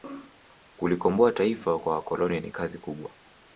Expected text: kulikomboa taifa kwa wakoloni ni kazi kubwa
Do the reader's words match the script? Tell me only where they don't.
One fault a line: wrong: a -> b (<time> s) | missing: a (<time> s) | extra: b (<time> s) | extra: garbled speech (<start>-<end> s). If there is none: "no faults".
no faults